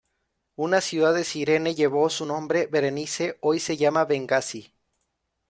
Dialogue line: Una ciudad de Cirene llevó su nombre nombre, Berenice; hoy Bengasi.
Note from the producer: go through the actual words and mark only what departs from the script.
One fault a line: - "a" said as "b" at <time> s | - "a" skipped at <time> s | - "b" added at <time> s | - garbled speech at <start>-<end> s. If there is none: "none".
- "nombre" skipped at 2.7 s
- "se llama" added at 3.6 s